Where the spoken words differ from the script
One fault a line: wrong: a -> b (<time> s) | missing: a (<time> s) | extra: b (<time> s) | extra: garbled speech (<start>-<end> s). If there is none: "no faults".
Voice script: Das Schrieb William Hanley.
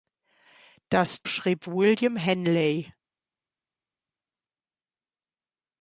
no faults